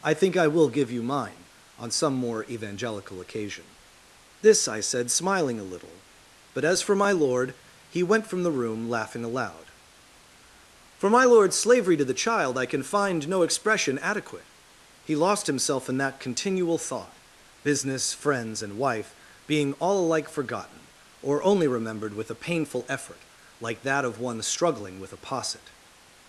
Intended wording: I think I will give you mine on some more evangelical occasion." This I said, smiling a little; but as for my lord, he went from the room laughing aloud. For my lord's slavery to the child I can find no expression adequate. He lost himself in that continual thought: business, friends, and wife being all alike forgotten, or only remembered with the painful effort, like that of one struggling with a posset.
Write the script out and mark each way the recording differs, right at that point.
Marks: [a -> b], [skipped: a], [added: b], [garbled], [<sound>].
I think I will give you mine on some more evangelical occasion." This I said, smiling a little; but as for my lord, he went from the room laughing aloud. For my lord's slavery to the child I can find no expression adequate. He lost himself in that continual thought: business, friends, and wife being all alike forgotten, or only remembered with [the -> a] painful effort, like that of one struggling with a posset.